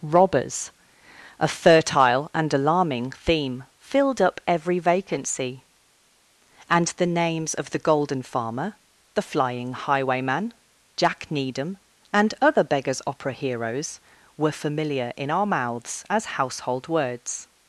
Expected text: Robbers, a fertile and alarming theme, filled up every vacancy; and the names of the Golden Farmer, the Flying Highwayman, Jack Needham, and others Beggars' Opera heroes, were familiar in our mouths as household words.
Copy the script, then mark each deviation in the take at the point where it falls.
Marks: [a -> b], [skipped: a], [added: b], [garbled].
Robbers, a fertile and alarming theme, filled up every vacancy; and the names of the Golden Farmer, the Flying Highwayman, Jack Needham, and [others -> other] Beggars' Opera heroes, were familiar in our mouths as household words.